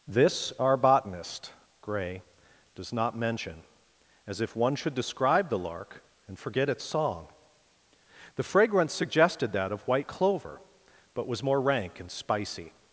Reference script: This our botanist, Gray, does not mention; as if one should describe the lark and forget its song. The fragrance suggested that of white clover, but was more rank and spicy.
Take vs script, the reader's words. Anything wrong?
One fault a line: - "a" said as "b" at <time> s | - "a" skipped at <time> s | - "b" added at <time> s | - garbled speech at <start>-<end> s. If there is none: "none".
none